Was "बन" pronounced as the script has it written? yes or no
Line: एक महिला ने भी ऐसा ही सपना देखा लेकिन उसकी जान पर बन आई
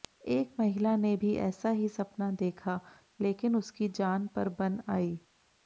yes